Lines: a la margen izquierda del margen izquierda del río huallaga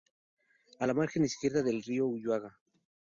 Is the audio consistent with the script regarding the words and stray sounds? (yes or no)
no